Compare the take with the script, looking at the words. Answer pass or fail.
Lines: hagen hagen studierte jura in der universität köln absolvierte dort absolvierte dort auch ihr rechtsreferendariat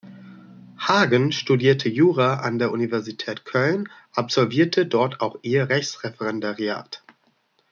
fail